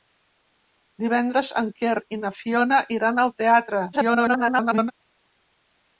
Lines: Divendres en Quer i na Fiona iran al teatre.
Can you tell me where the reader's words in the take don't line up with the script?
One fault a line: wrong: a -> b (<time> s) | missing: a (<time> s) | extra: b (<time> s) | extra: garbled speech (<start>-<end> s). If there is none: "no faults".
extra: garbled speech (3.9-4.9 s)